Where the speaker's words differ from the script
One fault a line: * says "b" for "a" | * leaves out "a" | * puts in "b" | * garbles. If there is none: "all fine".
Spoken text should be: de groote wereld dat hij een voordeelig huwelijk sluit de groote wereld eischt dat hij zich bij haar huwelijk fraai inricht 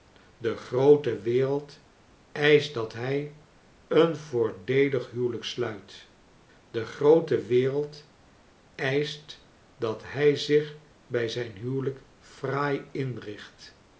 * puts in "eischt"
* says "zijn" for "haar"